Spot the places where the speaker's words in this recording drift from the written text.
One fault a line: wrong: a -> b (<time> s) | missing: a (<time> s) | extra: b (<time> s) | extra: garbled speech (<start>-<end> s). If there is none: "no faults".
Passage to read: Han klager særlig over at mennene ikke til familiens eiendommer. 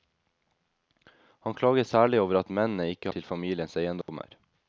no faults